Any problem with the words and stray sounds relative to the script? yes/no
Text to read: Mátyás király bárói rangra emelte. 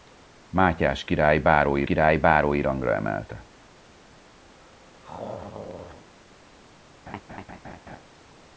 yes